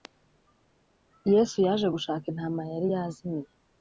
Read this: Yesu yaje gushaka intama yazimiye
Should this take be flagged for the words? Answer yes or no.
yes